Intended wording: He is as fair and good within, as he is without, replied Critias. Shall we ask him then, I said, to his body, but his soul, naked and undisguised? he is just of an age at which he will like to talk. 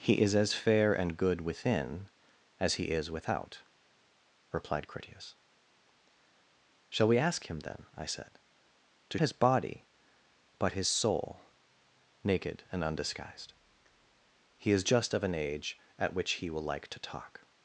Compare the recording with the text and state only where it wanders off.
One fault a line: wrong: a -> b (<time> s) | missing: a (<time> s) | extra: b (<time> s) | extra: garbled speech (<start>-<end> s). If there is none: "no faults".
no faults